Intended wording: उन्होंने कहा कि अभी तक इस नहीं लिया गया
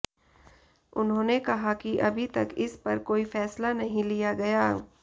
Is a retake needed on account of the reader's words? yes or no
yes